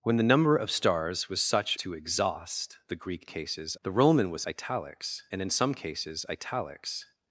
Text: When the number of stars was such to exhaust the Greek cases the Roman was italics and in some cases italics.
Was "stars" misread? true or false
false